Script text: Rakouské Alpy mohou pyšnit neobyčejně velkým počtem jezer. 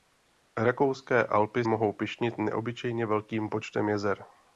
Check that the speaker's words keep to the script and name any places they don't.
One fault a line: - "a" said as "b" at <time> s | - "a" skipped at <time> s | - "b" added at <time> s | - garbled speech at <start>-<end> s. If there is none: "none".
none